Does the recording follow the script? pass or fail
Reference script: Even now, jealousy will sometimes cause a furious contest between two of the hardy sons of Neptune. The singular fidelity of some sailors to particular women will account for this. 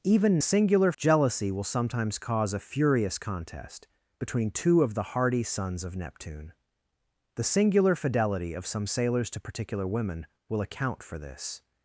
fail